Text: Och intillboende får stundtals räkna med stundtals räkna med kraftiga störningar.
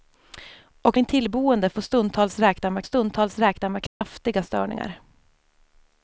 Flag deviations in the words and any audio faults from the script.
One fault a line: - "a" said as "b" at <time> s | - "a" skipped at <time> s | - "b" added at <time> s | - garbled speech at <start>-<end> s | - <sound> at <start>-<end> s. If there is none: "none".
- dropout at 3.9-4.0 s